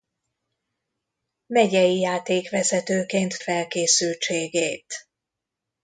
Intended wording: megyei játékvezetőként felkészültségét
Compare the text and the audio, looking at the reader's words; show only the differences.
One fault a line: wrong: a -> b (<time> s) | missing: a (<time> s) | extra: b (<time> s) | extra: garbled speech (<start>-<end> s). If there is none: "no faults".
no faults